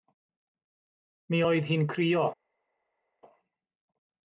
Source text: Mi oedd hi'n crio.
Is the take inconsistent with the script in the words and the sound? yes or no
no